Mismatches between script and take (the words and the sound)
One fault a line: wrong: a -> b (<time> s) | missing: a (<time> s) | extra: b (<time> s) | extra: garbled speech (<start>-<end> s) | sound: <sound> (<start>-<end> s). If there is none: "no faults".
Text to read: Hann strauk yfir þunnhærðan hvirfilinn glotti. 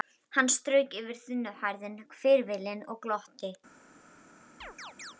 extra: og (2.9 s)
sound: chirp (4.6-5.1 s)